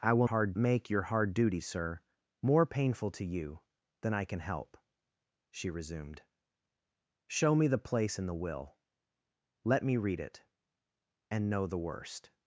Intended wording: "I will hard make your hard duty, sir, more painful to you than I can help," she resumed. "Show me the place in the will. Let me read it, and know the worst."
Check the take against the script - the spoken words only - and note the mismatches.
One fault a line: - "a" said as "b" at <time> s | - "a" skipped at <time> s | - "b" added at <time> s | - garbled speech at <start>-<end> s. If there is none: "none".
none